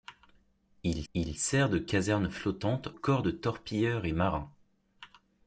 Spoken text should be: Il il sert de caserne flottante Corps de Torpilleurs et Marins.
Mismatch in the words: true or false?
false